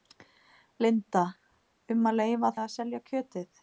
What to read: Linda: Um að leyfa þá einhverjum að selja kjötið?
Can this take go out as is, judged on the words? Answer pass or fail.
fail